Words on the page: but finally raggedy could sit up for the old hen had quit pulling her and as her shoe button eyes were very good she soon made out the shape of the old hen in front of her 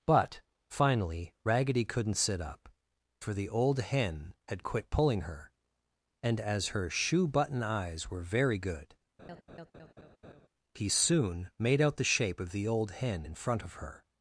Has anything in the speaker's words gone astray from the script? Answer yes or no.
yes